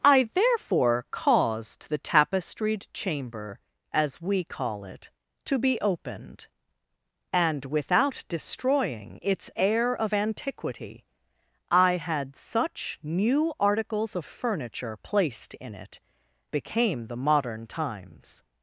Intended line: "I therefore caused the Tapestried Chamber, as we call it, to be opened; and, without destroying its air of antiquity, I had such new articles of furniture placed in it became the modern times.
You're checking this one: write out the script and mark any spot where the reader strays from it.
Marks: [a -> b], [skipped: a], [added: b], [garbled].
"I therefore caused the Tapestried Chamber, as we call it, to be opened; and, without destroying its air of antiquity, I had such new articles of furniture placed in it became the modern times.